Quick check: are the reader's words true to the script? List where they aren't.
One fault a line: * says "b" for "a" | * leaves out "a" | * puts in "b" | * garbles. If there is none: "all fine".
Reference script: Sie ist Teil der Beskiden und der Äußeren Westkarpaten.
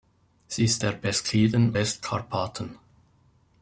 * leaves out "Teil"
* leaves out "und der Äußeren"